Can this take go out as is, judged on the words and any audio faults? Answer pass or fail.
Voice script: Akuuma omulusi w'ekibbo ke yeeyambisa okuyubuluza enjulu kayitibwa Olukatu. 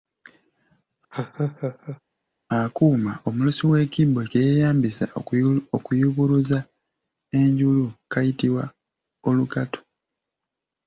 fail